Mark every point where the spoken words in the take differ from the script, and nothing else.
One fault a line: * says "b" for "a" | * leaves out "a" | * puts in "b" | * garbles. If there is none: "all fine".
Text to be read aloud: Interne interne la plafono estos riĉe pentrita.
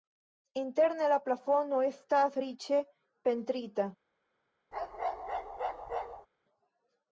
* leaves out "interne"
* says "estas" for "estos"